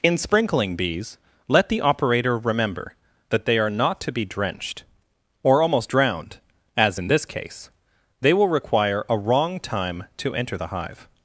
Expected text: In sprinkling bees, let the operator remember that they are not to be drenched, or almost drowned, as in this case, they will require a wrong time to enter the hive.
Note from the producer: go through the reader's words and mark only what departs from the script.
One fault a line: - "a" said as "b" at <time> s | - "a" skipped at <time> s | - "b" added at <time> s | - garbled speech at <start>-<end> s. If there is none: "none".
none